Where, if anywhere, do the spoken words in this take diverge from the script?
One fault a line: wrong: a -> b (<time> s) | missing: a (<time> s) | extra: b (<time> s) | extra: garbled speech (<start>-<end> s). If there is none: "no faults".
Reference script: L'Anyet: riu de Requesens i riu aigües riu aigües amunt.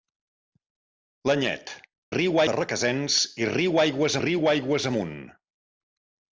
no faults